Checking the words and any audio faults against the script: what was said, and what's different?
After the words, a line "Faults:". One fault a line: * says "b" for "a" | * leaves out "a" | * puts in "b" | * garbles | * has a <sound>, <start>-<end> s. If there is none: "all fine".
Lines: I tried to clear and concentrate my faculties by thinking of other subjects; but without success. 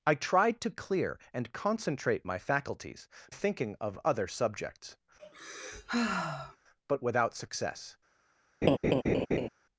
I tried to clear and concentrate my faculties thinking of other subjects; but without success.
Faults:
* leaves out "by"
* has a sigh, 5.2-6.6 s
* has a laugh, 8.6-9.5 s